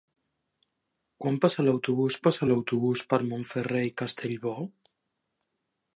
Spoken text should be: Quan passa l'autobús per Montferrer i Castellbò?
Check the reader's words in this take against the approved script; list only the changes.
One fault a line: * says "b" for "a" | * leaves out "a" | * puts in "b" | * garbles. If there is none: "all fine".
* puts in "passa l'autobús"